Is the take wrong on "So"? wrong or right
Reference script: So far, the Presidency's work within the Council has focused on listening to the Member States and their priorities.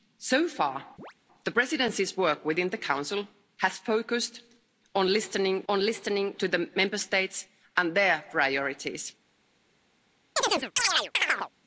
right